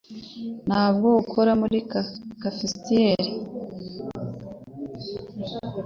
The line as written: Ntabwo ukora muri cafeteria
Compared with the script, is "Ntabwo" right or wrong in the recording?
right